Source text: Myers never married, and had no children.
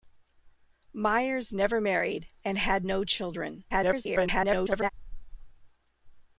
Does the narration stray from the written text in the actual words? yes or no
yes